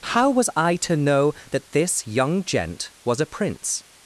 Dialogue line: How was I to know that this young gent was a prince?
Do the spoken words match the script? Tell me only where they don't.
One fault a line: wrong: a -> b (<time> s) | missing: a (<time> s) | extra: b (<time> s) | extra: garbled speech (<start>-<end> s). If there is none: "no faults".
no faults